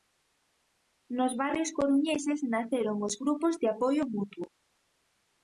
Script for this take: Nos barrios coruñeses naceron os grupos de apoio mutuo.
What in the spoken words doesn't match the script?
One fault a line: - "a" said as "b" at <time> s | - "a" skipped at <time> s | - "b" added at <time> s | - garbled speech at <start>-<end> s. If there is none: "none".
none